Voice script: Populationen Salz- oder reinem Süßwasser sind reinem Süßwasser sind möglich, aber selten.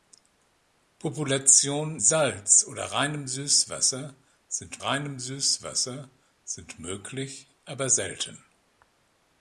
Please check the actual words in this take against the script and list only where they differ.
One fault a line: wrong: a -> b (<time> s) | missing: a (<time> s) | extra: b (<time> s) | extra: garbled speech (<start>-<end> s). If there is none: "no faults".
no faults